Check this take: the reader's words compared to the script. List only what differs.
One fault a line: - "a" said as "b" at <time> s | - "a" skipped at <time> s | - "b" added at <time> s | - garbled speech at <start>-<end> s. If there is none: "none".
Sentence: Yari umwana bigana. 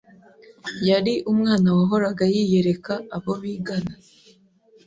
- "wahoraga yiyereka abo" added at 1.7 s